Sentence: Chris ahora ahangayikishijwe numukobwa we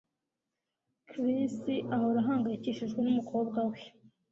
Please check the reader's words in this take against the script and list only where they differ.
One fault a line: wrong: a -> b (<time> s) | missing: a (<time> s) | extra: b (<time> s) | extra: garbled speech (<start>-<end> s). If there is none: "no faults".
no faults